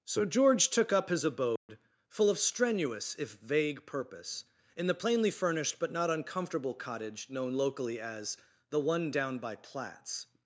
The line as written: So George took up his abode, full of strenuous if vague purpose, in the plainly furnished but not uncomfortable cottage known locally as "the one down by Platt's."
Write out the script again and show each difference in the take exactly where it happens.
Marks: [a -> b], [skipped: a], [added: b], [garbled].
So George took up his abode, full of strenuous if vague purpose, in the plainly furnished but not uncomfortable cottage known locally as "the one down by Platt's."